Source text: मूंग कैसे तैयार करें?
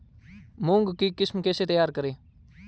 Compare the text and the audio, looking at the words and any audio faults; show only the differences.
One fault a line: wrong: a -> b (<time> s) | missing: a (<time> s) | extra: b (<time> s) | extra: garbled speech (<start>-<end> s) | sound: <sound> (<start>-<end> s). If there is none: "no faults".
extra: की किस्म (1.0 s)